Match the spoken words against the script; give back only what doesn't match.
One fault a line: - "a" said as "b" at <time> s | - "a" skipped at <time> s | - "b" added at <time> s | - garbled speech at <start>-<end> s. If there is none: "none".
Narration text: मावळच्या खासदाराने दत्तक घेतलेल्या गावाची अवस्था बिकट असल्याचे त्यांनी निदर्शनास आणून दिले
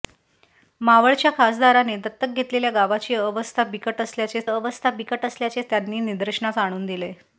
- "अवस्था बिकट असल्याचे" added at 4.4 s